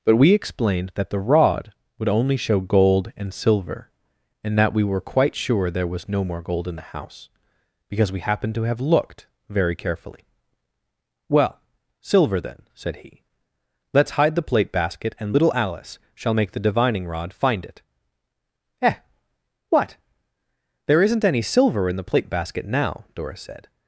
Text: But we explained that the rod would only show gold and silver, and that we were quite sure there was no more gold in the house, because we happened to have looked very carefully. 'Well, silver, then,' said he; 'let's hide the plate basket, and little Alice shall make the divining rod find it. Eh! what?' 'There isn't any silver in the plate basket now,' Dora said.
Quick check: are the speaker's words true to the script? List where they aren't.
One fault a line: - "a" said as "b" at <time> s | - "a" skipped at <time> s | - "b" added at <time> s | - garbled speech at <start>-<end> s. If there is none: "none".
none